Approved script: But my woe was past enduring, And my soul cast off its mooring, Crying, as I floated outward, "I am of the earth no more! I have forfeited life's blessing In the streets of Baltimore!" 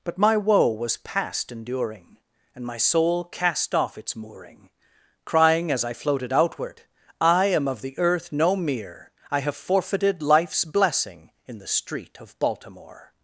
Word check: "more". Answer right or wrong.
wrong